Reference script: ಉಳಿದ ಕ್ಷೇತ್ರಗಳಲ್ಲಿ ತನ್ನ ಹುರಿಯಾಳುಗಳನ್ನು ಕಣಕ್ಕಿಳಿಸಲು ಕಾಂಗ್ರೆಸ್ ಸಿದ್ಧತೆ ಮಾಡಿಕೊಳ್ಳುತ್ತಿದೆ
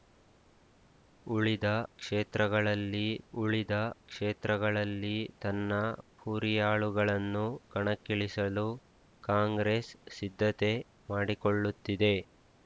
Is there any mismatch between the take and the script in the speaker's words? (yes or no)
yes